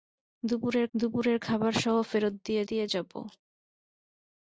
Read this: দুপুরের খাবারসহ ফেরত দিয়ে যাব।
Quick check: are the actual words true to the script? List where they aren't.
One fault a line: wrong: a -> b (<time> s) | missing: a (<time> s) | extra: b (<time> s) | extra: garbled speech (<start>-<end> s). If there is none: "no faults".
extra: দুপুরের (0.9 s)
extra: দিয়ে (2.7 s)